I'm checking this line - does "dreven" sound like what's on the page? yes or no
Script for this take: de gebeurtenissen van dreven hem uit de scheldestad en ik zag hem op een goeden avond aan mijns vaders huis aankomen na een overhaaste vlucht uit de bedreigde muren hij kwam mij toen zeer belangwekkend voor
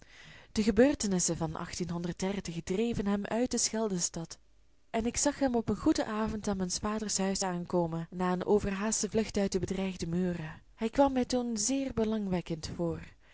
yes